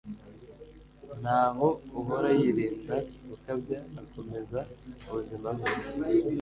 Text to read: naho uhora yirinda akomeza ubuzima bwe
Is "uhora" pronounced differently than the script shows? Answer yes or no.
no